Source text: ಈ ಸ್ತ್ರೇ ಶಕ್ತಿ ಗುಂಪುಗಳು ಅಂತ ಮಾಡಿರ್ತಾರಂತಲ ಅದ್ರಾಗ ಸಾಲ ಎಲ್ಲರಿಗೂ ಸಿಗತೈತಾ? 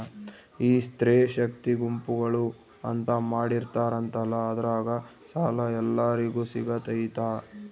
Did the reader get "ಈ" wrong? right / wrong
right